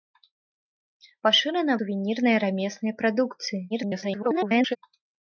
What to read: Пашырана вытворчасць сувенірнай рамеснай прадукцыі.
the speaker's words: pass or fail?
fail